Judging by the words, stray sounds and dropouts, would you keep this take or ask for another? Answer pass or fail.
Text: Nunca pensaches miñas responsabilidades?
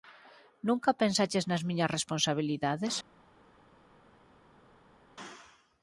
fail